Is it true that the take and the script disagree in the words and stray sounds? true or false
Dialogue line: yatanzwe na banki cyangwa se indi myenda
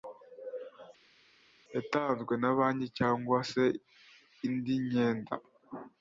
false